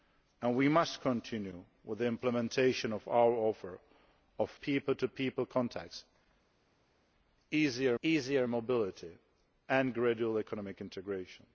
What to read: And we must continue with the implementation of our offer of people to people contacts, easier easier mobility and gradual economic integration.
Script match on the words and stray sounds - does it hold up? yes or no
yes